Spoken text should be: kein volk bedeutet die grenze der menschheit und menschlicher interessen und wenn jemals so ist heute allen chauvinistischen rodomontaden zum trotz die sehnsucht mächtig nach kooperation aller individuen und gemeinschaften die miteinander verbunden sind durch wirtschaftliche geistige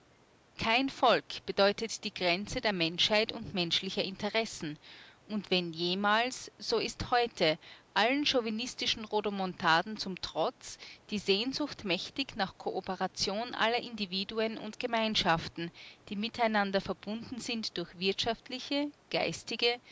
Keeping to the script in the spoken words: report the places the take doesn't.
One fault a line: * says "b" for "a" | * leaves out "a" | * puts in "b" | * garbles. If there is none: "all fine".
all fine